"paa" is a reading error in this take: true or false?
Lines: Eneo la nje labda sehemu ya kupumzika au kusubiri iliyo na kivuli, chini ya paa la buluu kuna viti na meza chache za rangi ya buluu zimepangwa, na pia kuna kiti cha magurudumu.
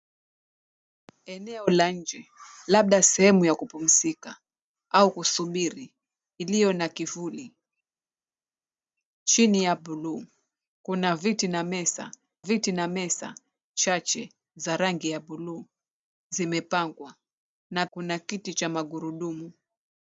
true